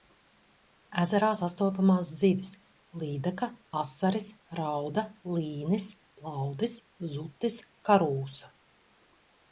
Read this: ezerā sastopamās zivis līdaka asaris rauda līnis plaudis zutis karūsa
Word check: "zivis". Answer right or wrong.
right